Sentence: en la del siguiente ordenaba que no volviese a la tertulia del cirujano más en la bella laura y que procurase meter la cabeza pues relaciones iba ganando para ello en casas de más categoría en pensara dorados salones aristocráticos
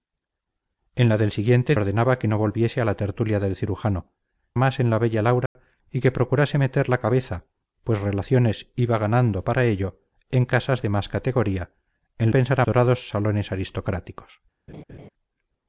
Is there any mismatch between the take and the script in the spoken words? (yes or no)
no